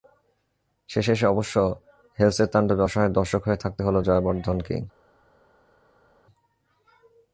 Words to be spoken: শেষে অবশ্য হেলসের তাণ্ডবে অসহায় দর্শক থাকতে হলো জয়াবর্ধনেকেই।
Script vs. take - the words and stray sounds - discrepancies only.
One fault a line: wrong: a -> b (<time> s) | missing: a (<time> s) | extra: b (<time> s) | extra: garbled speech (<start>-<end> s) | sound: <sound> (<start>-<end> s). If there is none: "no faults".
extra: এসে (1.1 s)
extra: হয়ে (3.5 s)